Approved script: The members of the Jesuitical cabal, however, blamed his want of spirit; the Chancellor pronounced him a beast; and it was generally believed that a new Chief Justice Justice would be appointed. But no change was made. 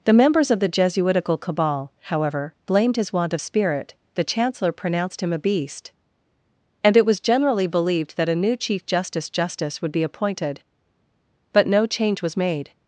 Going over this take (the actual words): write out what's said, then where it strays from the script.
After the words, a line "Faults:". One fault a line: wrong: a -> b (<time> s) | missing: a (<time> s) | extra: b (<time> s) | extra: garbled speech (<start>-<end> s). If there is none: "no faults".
The members of the Jesuitical cabal, however, blamed his want of spirit; the Chancellor pronounced him a beast; and it was generally believed that a new Chief Justice Justice would be appointed. But no change was made.
Faults:
no faults